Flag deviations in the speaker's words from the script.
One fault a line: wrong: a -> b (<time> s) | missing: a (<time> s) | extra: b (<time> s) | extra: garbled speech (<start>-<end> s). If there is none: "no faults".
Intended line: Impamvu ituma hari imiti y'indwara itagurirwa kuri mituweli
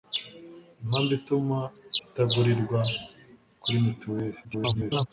missing: hari imiti y'indwara (1.6 s)
extra: garbled speech (4.4-5.1 s)